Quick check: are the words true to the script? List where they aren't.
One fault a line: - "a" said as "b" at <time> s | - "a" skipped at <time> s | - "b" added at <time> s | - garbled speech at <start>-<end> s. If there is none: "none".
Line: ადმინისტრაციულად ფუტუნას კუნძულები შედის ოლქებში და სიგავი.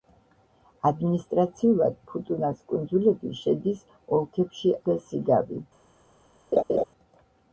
none